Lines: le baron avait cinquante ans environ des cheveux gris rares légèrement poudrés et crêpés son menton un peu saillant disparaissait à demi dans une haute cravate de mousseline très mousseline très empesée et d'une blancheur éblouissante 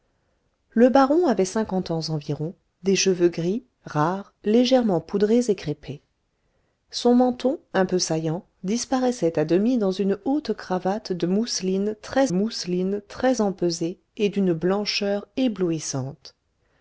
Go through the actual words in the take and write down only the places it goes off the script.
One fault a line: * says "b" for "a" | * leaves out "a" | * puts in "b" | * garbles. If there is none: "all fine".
all fine